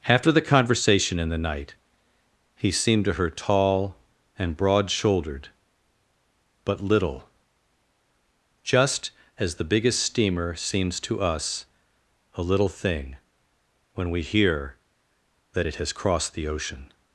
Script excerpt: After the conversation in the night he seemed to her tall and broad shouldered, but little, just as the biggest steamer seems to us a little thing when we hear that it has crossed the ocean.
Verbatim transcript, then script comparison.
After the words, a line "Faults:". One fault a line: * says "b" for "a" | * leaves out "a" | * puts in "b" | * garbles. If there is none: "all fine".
After the conversation in the night he seemed to her tall and broad shouldered, but little, just as the biggest steamer seems to us a little thing when we hear that it has crossed the ocean.
Faults:
all fine